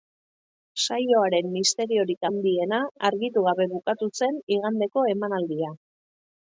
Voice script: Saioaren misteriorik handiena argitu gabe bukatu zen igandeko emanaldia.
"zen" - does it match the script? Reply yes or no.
yes